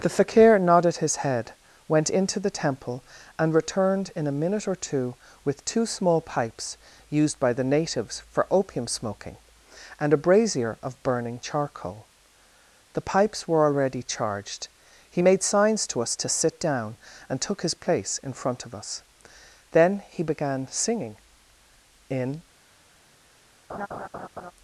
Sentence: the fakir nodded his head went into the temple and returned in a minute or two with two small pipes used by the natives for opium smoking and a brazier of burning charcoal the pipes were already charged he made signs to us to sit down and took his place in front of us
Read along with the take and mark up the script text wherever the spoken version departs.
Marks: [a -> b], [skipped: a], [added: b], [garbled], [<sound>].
the fakir nodded his head went into the temple and returned in a minute or two with two small pipes used by the natives for opium smoking and a brazier of burning charcoal the pipes were already charged he made signs to us to sit down and took his place in front of us [added: then he began singing in] [laugh]